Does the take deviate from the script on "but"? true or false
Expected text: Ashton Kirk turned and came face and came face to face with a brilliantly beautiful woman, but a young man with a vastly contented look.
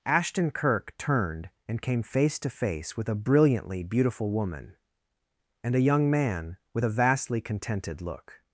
true